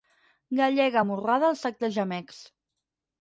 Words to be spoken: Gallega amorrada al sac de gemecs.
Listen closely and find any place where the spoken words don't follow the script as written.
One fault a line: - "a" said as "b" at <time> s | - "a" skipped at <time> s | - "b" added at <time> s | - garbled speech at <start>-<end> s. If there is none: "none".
none